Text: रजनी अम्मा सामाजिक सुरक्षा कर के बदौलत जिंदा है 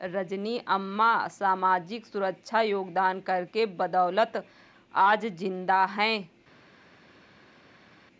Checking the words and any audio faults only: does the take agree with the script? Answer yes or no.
no